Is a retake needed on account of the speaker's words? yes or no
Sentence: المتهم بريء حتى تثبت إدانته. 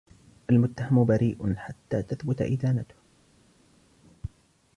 no